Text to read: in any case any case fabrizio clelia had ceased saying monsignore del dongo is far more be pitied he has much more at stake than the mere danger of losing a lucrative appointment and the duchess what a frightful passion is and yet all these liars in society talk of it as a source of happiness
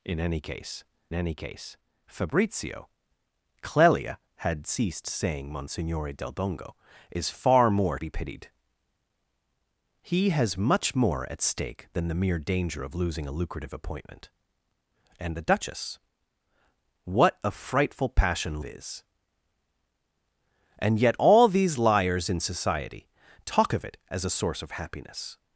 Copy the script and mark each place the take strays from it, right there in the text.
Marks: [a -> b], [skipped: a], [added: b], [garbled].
in any case any case fabrizio clelia had ceased saying monsignore del dongo is far more be pitied he has much more at stake than the mere danger of losing a lucrative appointment and the duchess what a frightful passion is and yet all these liars in society talk of it as a source of happiness